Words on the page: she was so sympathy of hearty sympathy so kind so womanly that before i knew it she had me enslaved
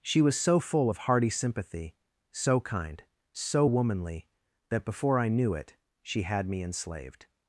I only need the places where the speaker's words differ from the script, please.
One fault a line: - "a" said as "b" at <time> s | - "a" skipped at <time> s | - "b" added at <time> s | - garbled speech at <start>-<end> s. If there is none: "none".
- "sympathy" said as "full" at 0.6 s